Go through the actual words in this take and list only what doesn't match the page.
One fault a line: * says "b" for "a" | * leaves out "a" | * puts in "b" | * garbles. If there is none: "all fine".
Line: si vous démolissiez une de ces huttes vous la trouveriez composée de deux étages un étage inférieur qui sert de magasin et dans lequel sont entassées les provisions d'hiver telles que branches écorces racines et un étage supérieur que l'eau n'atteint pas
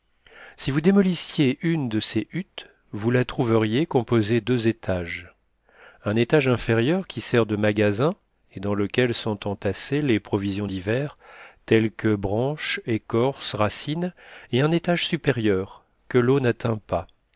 * leaves out "de"